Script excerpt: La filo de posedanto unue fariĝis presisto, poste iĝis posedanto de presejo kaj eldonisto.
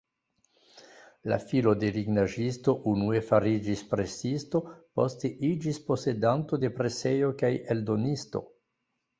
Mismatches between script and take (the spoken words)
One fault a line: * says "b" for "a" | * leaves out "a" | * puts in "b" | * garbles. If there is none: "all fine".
* says "lignaĵisto" for "posedanto"